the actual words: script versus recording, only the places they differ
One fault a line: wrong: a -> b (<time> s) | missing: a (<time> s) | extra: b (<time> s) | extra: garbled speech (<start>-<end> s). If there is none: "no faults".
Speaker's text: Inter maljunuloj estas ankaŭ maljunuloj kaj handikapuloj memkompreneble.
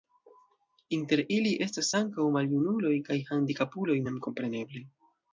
wrong: maljunuloj -> ili (1.4 s)